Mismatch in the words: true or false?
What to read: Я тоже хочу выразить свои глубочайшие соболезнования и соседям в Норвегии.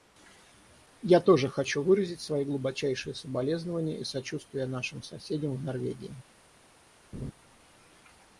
true